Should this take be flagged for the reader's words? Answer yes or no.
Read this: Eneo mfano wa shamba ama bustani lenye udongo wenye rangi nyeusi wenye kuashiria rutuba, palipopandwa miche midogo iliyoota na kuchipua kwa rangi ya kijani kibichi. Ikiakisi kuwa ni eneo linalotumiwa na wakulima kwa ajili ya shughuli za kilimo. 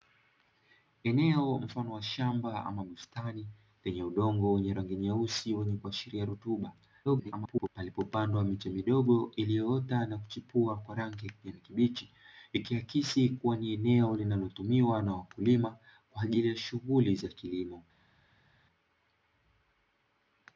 yes